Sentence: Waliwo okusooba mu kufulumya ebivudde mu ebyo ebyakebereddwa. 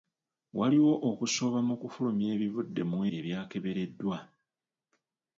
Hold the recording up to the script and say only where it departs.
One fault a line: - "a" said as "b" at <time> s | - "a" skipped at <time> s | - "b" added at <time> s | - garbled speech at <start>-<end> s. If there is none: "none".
- "ebyo" skipped at 3.0 s